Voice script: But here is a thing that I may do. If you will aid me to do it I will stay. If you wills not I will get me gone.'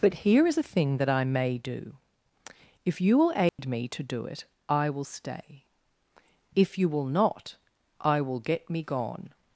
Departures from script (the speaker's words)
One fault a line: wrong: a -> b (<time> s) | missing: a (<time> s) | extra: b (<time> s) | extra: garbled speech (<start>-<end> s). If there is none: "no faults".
wrong: wills -> will (6.9 s)